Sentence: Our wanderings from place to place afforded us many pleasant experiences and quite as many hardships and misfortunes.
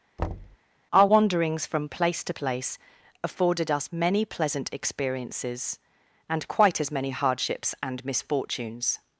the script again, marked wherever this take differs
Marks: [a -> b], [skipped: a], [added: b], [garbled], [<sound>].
[thud] Our wanderings from place to place afforded us many pleasant experiences and quite as many hardships and misfortunes.